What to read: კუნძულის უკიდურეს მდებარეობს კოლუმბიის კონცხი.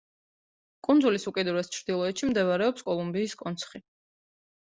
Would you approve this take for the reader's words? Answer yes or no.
no